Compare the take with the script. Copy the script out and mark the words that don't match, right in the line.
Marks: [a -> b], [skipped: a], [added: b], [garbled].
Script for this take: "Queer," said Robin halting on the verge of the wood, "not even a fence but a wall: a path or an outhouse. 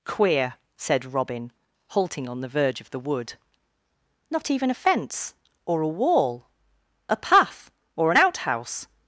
"Queer," said Robin halting on the verge of the wood, "not even a fence [but -> or] a wall: a path or an outhouse.